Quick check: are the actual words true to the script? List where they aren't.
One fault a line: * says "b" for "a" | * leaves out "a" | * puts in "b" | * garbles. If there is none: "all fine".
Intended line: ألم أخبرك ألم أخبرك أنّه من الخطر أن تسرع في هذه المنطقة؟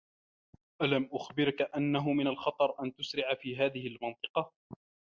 * leaves out "ألم أخبرك"